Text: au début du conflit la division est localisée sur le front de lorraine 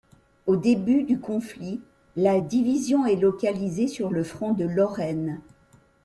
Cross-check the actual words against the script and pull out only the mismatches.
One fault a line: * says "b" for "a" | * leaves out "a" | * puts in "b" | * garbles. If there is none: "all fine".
all fine